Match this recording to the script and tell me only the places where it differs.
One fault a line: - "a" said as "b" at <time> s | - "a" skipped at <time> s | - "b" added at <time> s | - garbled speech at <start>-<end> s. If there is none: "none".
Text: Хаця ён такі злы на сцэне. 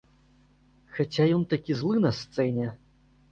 none